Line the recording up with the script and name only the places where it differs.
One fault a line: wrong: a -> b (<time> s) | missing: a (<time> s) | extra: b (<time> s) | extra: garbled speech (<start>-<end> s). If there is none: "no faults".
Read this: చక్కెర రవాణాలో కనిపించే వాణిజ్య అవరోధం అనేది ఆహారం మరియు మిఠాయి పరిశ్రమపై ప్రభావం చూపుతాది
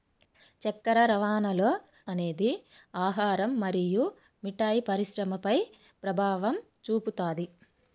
missing: కనిపించే వాణిజ్య అవరోధం (1.7 s)